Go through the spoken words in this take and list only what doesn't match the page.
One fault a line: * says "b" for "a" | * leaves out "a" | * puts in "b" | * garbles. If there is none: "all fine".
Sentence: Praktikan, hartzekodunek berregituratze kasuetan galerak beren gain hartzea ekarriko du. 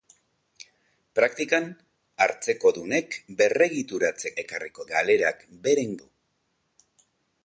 * says "ekarriko" for "kasuetan"
* leaves out "gain hartzea ekarriko"